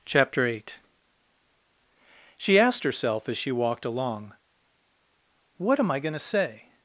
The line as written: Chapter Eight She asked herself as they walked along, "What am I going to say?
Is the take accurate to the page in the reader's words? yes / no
no